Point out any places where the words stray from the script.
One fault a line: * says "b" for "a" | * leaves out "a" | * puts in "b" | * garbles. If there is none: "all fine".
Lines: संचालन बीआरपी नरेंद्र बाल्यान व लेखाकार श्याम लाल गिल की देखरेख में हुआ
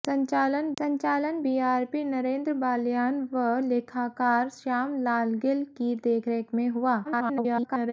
* puts in "संचालन"
* garbles